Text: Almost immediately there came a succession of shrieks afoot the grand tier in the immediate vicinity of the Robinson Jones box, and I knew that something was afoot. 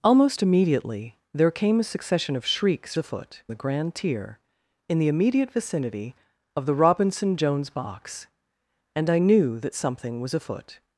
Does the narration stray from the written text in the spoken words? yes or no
no